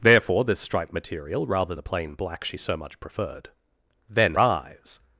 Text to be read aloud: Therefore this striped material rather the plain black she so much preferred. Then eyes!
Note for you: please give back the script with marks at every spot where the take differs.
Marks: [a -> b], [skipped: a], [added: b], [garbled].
Therefore this striped material rather the plain black she so much preferred. Then eyes!